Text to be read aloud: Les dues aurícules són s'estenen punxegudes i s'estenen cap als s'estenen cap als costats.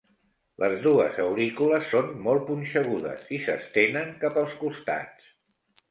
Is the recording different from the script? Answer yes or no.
yes